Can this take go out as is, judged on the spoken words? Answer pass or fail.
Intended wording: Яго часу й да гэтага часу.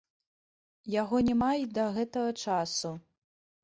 fail